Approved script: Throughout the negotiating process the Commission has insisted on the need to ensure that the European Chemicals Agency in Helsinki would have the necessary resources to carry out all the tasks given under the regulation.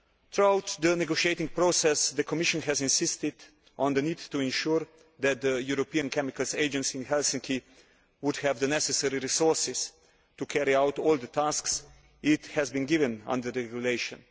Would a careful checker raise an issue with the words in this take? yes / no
yes